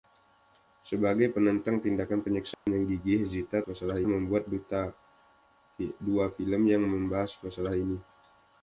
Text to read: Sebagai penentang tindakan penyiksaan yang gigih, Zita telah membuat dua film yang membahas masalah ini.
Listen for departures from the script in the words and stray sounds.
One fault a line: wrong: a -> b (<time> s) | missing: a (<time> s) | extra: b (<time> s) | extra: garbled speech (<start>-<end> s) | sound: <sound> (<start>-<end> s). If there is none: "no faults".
sound: dropout (2.5-2.7 s)
wrong: telah -> masalah (3.6 s)